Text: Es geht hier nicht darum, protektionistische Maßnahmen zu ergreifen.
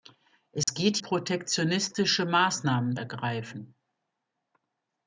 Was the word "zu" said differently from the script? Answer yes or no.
yes